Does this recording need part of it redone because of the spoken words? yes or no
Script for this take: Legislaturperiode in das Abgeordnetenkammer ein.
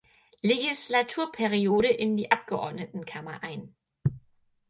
yes